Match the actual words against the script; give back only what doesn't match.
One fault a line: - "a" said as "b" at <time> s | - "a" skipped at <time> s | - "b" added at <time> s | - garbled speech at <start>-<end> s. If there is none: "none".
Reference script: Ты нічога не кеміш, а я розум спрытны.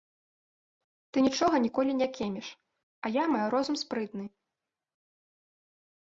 - "ніколі" added at 1.6 s
- "маю" added at 3.3 s